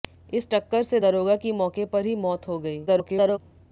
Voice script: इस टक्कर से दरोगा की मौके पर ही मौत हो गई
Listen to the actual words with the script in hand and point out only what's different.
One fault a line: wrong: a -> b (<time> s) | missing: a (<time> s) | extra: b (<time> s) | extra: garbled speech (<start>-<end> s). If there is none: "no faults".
extra: garbled speech (2.9-3.4 s)